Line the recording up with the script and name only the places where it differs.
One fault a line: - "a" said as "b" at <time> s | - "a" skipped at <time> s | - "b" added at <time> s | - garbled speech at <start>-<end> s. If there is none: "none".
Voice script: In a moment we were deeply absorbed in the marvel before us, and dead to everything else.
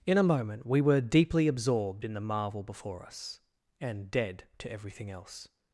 none